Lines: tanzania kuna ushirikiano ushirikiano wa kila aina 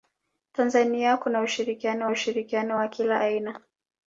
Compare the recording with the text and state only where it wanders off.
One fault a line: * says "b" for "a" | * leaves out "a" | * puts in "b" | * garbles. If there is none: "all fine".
all fine